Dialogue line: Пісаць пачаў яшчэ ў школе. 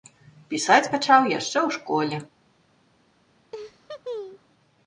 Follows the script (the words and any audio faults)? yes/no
no